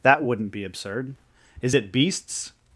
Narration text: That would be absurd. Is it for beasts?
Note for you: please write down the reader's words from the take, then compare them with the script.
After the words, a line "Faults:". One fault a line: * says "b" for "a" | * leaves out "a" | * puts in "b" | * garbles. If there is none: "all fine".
That wouldn't be absurd. Is it beasts?
Faults:
* says "wouldn't" for "would"
* leaves out "for"